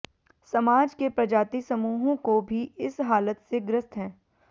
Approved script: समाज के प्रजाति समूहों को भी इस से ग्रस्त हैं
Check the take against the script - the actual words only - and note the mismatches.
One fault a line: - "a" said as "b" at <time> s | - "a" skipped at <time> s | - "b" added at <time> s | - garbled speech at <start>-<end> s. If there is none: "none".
- "हालत" added at 3.0 s